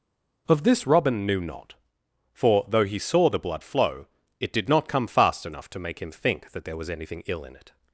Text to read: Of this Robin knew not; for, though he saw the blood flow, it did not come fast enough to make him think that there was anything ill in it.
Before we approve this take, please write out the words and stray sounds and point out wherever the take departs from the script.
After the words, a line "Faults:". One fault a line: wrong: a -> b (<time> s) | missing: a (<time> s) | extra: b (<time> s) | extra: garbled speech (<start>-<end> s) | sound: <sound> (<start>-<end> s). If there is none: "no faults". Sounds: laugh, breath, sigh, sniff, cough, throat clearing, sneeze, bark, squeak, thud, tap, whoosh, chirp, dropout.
Of this Robin knew not; for, though he saw the blood flow, it did not come fast enough to make him think that there was anything ill in it.
Faults:
no faults